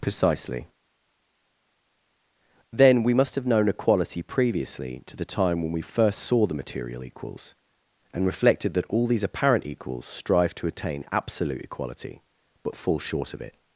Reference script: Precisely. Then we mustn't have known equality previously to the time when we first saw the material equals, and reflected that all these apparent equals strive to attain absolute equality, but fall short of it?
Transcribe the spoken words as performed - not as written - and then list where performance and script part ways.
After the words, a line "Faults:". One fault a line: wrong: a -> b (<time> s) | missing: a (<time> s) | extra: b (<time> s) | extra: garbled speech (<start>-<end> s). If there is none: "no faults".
Precisely. Then we must have known equality previously to the time when we first saw the material equals, and reflected that all these apparent equals strive to attain absolute equality, but fall short of it?
Faults:
wrong: mustn't -> must (3.1 s)